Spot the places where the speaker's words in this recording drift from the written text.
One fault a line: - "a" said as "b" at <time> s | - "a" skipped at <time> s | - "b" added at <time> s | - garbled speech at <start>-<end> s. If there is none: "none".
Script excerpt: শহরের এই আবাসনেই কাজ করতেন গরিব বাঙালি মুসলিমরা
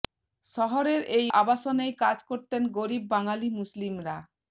none